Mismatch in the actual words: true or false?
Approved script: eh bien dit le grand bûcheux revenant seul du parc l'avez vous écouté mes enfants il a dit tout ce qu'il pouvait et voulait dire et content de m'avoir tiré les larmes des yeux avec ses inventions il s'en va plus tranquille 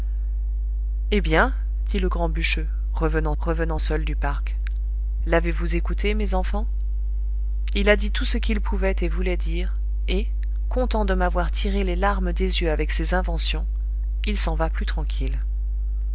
true